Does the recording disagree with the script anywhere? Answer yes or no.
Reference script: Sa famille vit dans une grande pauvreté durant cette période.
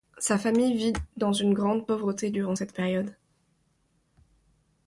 no